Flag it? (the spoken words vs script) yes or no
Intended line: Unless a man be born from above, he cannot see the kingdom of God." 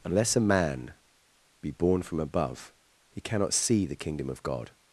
no